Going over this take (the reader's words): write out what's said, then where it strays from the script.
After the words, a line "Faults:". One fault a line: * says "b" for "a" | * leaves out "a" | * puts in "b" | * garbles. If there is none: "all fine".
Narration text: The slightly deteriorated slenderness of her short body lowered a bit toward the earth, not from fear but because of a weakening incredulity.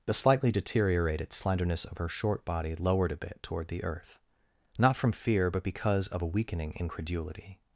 The slightly deteriorated slenderness of her short body lowered a bit toward the earth, not from fear but because of a weakening incredulity.
Faults:
all fine